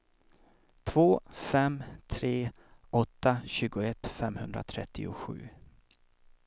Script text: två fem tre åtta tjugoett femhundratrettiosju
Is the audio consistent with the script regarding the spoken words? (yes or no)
yes